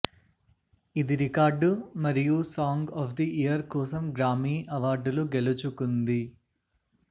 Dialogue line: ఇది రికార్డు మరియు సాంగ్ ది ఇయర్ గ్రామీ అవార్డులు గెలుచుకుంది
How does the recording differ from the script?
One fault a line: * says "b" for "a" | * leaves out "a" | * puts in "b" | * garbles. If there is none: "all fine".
* puts in "ఆఫ్"
* puts in "కోసం"